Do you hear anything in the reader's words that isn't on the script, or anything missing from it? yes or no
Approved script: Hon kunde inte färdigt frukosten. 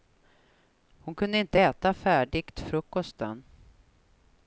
yes